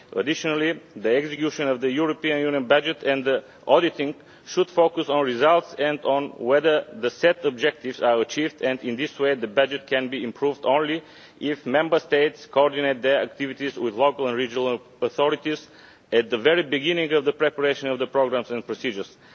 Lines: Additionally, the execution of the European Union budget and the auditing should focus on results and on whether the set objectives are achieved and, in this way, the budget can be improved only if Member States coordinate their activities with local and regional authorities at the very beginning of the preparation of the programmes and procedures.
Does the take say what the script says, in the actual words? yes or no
yes